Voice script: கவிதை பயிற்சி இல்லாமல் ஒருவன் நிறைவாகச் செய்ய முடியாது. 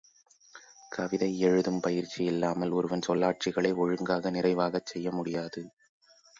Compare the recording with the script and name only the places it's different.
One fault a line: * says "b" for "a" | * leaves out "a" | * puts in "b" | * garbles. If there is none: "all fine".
* puts in "எழுதும்"
* puts in "சொல்லாட்சிகளை ஒழுங்காக"